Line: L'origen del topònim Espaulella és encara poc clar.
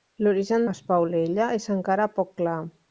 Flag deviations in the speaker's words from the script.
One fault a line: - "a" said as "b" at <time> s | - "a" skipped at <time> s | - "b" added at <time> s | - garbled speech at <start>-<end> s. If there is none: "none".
- "del topònim" skipped at 0.6 s